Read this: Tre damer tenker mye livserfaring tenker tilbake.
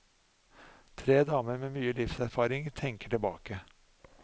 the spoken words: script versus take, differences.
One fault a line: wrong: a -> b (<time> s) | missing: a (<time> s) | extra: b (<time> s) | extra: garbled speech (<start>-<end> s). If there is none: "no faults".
wrong: tenker -> med (1.6 s)